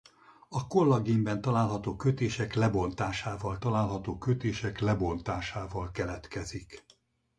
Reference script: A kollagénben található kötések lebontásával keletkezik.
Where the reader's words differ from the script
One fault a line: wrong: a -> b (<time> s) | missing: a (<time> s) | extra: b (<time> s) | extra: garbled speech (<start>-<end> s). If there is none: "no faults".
extra: található kötések lebontásával (3.6 s)